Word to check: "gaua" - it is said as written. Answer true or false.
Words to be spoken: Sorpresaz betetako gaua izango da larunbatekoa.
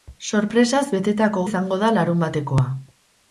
false